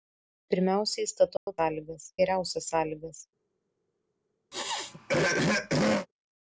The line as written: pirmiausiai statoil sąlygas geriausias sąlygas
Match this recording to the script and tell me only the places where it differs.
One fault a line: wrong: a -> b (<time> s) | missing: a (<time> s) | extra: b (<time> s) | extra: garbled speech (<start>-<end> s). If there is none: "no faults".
no faults